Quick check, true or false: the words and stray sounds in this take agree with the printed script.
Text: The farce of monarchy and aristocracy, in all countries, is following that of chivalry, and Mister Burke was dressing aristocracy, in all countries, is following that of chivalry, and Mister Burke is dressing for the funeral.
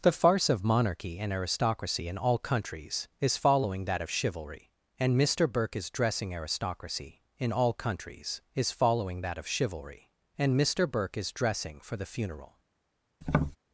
false